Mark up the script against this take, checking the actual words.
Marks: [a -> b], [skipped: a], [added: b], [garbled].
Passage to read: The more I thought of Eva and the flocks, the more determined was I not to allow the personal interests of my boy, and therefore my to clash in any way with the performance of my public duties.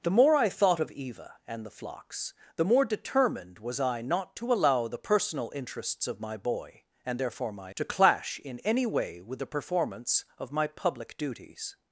The more I thought of Eva and the flocks, the more determined was I not to allow the personal interests of my boy, and therefore my to clash in any way with the performance of my public duties.